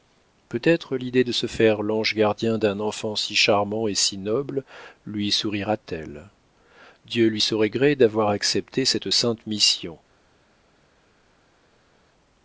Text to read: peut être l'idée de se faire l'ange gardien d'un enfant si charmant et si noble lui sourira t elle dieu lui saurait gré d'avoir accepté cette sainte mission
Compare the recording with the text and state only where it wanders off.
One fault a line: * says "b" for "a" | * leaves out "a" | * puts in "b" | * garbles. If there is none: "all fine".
all fine